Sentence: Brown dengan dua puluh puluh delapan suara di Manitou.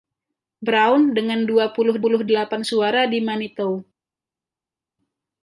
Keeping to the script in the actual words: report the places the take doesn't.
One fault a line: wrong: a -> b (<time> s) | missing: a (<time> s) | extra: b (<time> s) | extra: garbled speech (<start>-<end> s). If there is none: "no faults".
no faults